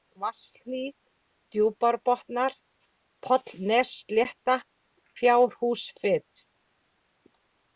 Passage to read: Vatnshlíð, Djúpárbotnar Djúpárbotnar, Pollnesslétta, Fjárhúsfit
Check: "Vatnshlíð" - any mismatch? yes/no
no